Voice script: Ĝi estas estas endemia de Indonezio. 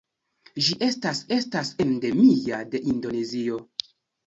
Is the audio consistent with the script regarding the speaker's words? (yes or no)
yes